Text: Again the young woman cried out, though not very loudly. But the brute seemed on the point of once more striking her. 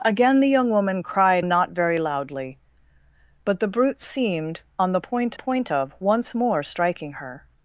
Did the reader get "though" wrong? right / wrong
wrong